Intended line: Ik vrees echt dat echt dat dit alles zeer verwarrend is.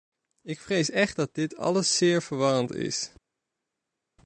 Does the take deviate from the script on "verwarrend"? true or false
false